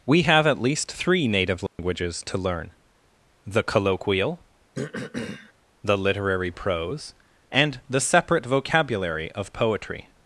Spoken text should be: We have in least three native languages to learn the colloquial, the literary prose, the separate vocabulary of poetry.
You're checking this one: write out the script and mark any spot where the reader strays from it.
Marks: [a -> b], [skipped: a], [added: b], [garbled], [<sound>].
We have [in -> at] least three native languages [dropout] to learn the colloquial, [throat clearing] the literary prose, [added: and] the separate vocabulary of poetry.